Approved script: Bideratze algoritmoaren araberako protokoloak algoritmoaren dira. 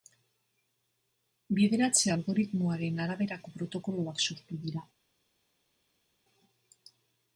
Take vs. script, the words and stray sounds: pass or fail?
fail